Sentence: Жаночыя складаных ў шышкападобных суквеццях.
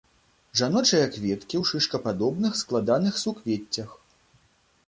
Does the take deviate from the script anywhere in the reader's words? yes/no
yes